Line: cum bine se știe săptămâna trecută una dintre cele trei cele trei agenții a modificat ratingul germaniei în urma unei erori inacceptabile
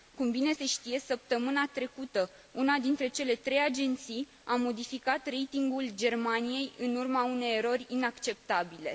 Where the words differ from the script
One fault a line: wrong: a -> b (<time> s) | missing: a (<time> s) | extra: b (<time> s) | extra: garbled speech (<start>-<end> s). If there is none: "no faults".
missing: cele trei (3.6 s)